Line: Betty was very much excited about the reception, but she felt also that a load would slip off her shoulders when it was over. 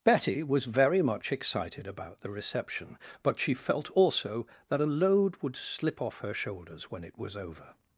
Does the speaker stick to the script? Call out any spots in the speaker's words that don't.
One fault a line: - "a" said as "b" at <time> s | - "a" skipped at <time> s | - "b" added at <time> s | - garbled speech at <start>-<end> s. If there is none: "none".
none